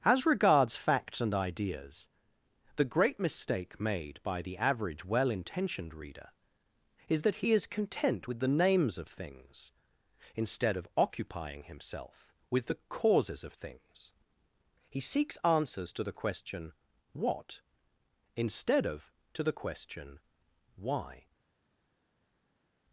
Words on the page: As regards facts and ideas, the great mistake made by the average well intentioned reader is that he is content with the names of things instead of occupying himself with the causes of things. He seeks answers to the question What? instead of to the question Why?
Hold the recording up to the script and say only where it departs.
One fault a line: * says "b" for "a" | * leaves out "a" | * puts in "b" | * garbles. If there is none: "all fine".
all fine